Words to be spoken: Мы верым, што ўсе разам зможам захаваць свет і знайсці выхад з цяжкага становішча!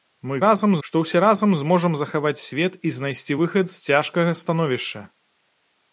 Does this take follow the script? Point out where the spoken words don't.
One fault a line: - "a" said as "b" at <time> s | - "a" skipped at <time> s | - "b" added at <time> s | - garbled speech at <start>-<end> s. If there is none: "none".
- "верым" said as "разам" at 0.4 s